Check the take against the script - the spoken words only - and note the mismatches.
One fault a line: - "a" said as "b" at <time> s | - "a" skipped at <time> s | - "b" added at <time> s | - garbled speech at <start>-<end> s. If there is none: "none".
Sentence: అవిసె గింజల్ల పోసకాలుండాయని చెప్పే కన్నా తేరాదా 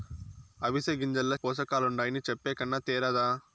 none